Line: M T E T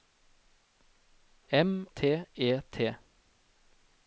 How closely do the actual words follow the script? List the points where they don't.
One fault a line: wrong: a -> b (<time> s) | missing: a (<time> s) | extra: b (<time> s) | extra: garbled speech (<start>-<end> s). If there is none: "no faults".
no faults